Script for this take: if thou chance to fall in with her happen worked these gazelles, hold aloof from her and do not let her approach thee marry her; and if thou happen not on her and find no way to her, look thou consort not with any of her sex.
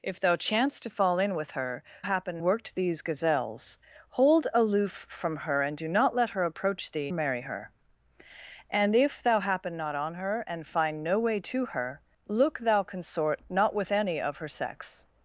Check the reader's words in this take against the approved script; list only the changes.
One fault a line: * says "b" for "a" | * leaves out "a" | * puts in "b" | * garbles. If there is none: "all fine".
all fine